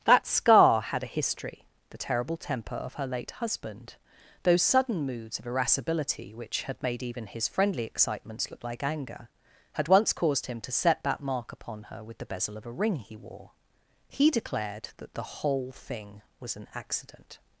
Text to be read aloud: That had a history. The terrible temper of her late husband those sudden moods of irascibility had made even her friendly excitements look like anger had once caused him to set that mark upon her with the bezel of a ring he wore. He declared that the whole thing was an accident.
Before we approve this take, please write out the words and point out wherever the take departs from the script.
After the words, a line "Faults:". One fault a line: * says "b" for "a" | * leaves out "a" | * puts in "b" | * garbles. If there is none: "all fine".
That scar had a history. The terrible temper of her late husband those sudden moods of irascibility which had made even his friendly excitements look like anger had once caused him to set that mark upon her with the bezel of a ring he wore. He declared that the whole thing was an accident.
Faults:
* puts in "scar"
* puts in "which"
* says "his" for "her"